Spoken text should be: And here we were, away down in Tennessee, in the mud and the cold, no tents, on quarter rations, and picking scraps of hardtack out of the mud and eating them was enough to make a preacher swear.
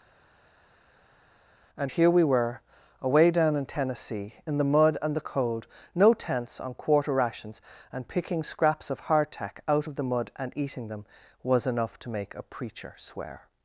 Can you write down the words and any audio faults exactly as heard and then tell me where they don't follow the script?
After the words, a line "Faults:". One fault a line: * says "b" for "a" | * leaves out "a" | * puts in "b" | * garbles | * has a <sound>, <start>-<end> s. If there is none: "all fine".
And here we were, away down in Tennessee, in the mud and the cold, no tents, on quarter rations, and picking scraps of hardtack out of the mud and eating them was enough to make a preacher swear.
Faults:
all fine